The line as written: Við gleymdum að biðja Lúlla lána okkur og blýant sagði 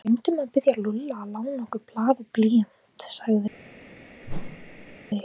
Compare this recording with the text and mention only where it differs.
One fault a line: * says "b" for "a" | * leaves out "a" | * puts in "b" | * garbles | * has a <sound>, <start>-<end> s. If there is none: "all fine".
* puts in "að"
* puts in "blað"
* has a whoosh, 4.2-5.0 s